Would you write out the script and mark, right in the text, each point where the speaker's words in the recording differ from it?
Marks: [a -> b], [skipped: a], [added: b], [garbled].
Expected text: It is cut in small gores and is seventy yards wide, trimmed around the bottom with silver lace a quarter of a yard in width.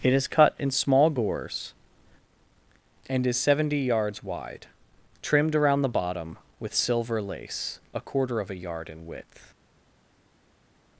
It is cut in small gores and is seventy yards wide, trimmed around the bottom with silver lace a quarter of a yard in width.